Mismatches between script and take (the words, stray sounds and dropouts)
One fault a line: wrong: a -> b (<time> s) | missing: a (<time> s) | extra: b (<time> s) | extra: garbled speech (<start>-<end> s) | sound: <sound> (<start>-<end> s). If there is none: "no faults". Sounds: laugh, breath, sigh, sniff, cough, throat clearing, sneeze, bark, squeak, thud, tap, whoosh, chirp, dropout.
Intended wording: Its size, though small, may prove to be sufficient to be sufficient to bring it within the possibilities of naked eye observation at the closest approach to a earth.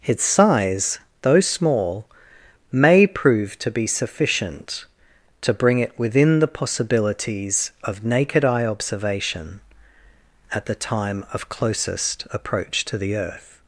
missing: be sufficient to (5.5 s)
extra: time of (10.7 s)
wrong: a -> the (13.0 s)